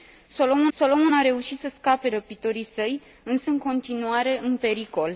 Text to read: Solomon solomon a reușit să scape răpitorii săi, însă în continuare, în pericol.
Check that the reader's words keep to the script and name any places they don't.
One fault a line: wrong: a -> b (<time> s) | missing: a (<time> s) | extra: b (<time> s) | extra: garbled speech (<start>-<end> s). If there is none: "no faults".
no faults